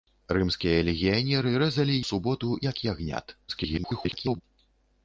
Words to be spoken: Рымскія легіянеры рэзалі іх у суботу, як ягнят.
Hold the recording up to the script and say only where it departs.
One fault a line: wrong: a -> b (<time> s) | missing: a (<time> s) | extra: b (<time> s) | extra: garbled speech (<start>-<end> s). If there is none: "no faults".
missing: іх (2.0 s)
extra: garbled speech (3.5-4.4 s)